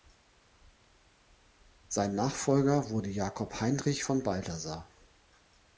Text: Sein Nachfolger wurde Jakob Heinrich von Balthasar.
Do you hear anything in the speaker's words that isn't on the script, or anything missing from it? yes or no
no